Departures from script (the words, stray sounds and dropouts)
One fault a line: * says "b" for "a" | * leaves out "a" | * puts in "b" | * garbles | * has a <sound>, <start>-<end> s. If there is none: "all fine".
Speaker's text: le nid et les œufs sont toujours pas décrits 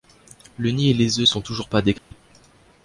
* has a dropout, 2.0-2.1 s